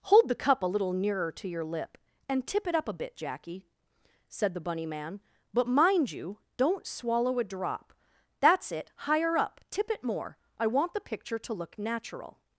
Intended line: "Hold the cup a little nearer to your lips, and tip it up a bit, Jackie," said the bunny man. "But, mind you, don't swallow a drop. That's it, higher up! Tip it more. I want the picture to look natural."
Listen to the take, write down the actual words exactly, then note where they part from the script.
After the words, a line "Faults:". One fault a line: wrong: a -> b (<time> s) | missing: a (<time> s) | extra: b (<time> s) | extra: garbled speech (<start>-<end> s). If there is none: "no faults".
"Hold the cup a little nearer to your lip, and tip it up a bit, Jackie," said the bunny man. "But, mind you, don't swallow a drop. That's it, higher up! Tip it more. I want the picture to look natural."
Faults:
wrong: lips -> lip (1.6 s)